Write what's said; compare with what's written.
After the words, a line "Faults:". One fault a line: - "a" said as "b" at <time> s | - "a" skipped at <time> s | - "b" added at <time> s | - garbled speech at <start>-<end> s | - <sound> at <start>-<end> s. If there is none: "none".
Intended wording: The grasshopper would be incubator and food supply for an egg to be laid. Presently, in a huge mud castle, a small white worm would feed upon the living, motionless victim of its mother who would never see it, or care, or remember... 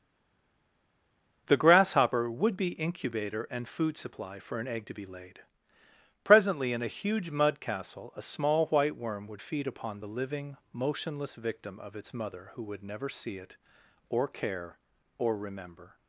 The grasshopper would be incubator and food supply for an egg to be laid. Presently, in a huge mud castle, a small white worm would feed upon the living, motionless victim of its mother who would never see it, or care, or remember...
Faults:
none